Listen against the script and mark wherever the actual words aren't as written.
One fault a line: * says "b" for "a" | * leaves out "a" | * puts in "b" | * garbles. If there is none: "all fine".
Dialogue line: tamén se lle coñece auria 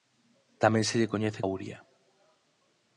all fine